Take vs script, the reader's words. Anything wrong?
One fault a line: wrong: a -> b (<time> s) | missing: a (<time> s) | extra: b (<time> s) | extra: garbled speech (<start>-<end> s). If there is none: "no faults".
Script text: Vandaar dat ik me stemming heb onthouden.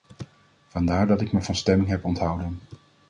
extra: van (1.4 s)